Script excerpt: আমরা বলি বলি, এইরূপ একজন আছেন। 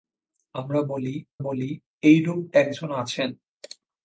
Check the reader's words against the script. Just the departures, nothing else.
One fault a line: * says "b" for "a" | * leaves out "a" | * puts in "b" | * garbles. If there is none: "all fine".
all fine